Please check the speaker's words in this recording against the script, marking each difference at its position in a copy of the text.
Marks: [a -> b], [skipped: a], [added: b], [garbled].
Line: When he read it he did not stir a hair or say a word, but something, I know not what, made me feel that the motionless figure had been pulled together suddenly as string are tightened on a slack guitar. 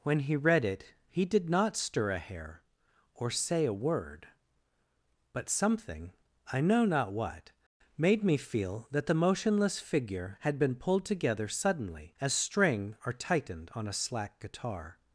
When he read it he did not stir a hair or say a word, but something, I know not what, made me feel that the motionless figure had been pulled together suddenly as string are tightened on a slack guitar.